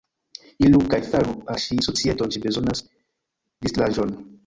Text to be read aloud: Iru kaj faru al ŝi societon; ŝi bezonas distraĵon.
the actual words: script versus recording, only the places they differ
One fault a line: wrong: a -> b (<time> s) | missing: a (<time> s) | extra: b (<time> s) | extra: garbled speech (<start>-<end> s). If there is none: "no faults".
no faults